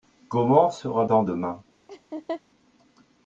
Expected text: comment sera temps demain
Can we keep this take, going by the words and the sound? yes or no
no